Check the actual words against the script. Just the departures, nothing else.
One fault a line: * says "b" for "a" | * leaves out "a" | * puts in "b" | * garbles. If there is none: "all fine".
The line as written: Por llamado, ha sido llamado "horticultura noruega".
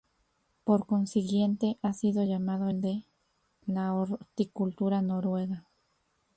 * says "consiguiente" for "llamado"
* puts in "el de la"